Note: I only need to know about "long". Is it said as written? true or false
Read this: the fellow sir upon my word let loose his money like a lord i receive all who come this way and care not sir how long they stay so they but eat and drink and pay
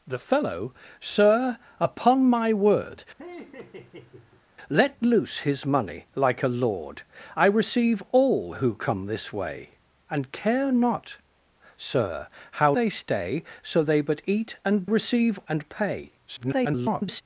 false